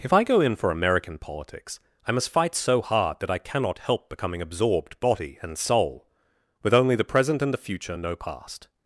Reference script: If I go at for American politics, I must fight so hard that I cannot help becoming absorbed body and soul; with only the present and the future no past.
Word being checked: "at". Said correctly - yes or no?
no